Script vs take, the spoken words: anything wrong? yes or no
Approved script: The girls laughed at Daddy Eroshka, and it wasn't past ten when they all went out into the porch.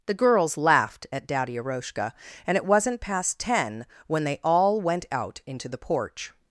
no